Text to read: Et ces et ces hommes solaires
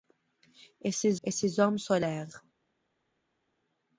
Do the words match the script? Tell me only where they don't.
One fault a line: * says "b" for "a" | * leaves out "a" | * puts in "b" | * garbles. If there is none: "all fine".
all fine